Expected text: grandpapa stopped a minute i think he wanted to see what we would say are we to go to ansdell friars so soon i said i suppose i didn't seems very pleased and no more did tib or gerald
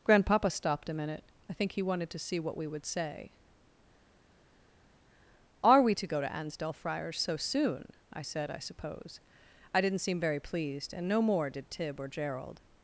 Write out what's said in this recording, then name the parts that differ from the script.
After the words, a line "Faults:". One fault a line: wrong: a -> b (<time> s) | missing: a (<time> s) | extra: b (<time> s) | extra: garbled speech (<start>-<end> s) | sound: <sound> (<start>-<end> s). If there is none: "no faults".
grandpapa stopped a minute i think he wanted to see what we would say are we to go to ansdell friars so soon i said i suppose i didn't seem very pleased and no more did tib or gerald
Faults:
wrong: seems -> seem (10.0 s)